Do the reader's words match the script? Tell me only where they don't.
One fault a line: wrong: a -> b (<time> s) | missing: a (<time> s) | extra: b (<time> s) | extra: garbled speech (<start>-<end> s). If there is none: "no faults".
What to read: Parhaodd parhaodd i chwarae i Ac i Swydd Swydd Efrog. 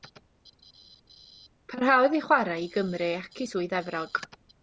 missing: parhaodd (2.2 s)
extra: Gymru (2.8 s)
missing: Swydd (3.8 s)